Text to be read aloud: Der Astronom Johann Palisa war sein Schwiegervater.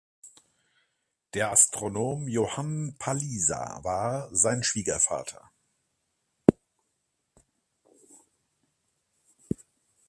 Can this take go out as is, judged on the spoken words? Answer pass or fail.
pass